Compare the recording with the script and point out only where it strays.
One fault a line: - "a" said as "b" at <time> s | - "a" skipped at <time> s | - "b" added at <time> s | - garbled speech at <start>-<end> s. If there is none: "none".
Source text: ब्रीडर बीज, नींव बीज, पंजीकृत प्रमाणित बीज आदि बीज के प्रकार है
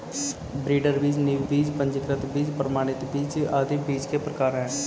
- "बीज" added at 2.3 s